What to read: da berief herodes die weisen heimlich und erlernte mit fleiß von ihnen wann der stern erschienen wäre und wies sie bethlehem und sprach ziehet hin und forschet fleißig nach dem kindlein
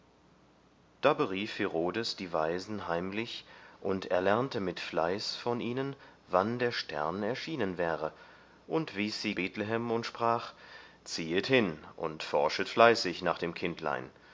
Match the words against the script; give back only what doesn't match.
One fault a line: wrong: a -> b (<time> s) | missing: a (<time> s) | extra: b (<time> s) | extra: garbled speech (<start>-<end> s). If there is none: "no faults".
no faults